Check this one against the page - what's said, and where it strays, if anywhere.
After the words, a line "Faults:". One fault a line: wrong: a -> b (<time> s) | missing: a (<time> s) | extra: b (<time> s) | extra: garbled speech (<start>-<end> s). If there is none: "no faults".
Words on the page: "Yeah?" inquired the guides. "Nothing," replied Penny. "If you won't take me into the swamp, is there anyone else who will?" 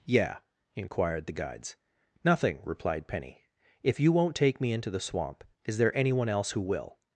"Yeah?" inquired the guides. "Nothing," replied Penny. "If you won't take me into the swamp, is there anyone else who will?"
Faults:
no faults